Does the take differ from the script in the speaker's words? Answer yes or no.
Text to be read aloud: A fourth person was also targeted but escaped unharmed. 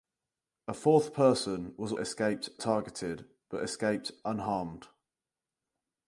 yes